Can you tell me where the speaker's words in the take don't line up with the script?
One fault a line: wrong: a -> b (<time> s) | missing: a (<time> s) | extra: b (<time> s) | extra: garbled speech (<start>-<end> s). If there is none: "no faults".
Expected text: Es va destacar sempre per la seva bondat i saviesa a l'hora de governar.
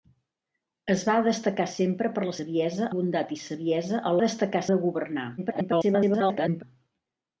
wrong: seva -> saviesa (2.3 s)
wrong: l'hora -> destacar (4.2 s)
extra: garbled speech (5.4-6.6 s)